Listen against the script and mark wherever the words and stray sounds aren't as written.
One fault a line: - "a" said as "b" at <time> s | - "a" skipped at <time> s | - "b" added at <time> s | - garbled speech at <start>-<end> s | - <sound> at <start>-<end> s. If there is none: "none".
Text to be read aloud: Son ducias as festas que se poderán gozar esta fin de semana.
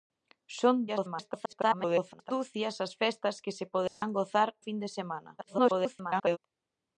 - garbled speech at 0.9-2.3 s
- dropout at 3.9-4.0 s
- "esta" skipped at 4.5 s
- garbled speech at 5.4-6.4 s